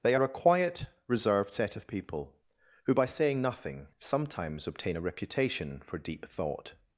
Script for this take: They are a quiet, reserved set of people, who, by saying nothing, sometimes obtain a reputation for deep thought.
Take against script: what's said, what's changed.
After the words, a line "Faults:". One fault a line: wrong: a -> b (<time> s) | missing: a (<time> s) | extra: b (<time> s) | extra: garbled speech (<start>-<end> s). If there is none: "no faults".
They are a quiet, reserved set of people, who, by saying nothing, sometimes obtain a reputation for deep thought.
Faults:
no faults